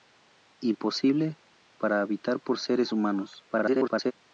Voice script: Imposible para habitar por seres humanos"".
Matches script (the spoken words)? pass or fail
fail